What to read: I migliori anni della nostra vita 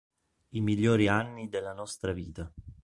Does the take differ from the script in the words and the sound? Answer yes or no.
no